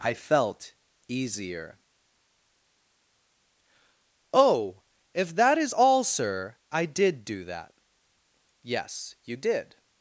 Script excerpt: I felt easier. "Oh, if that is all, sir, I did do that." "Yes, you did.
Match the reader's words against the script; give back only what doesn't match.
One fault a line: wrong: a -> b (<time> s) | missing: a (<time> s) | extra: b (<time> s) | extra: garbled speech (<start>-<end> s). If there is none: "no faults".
no faults